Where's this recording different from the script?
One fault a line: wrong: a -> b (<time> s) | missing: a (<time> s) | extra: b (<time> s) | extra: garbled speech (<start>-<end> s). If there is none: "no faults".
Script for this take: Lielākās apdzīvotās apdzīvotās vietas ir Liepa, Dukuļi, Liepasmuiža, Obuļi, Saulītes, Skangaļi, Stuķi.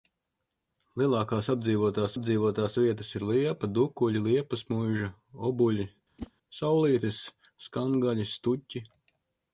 no faults